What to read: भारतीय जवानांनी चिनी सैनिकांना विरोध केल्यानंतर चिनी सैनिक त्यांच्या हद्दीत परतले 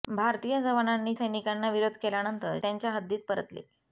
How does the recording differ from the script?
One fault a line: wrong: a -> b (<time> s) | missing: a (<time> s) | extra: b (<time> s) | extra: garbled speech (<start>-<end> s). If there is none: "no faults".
missing: चिनी (1.1 s)
missing: चिनी सैनिक (2.6 s)